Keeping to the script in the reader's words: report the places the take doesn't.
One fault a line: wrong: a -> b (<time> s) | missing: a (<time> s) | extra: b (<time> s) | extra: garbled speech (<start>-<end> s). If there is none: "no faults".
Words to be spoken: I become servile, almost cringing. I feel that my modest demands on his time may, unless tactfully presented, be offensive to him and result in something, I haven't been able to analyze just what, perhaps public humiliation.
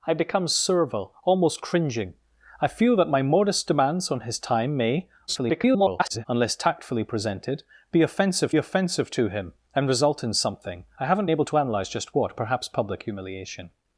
extra: garbled speech (5.3-6.3 s)
extra: offensive (8.6 s)
missing: been (11.3 s)